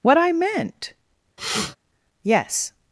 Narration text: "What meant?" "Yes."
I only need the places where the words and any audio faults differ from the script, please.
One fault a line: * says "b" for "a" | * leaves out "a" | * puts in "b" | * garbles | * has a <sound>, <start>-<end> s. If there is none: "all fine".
* puts in "I"
* has a sniff, 1.4-1.8 s